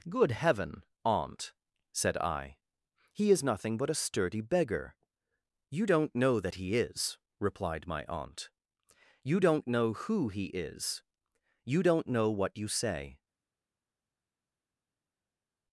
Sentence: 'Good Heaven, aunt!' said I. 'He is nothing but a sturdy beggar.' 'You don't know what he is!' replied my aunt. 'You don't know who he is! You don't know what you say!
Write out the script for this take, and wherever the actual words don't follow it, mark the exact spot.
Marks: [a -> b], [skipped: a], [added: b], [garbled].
'Good Heaven, aunt!' said I. 'He is nothing but a sturdy beggar.' 'You don't know [what -> that] he is!' replied my aunt. 'You don't know who he is! You don't know what you say!